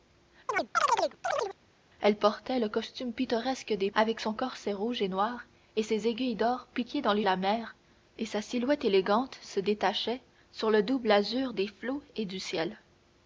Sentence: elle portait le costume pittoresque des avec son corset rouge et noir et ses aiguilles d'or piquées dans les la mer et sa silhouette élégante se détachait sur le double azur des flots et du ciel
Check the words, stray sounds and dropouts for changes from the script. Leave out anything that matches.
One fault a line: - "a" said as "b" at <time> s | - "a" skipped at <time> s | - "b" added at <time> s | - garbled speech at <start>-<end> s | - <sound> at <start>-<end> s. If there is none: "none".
- chirp at 0.5-1.6 s